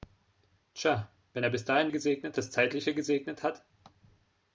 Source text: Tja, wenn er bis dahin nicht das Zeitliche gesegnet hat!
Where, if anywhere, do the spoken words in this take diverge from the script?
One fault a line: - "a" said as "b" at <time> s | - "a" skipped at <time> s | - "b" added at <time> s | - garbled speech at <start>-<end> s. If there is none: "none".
- "nicht" said as "gesegnet" at 1.9 s